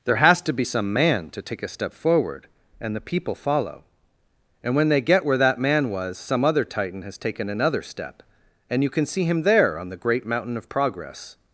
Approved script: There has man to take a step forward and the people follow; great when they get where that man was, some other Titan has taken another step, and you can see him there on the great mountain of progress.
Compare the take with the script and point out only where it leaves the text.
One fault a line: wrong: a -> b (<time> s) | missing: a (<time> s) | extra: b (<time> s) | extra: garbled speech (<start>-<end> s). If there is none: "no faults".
extra: to be some (0.4 s)
wrong: great -> and (4.6 s)